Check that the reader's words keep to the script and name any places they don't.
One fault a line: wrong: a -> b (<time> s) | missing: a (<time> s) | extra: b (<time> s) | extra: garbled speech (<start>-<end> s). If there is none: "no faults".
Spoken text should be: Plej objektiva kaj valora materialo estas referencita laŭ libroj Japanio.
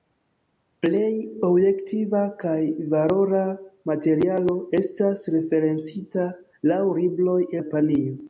no faults